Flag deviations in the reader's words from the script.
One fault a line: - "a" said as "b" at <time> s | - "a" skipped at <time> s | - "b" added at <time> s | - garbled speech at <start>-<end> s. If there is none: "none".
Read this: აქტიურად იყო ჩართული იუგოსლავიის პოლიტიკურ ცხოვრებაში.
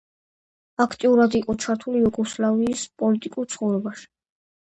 none